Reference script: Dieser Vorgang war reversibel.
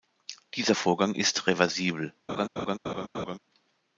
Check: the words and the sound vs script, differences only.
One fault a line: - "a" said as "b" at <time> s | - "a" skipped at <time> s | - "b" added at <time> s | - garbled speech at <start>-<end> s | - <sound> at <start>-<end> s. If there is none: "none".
- "war" said as "ist" at 1.1 s
- laugh at 2.3-3.4 s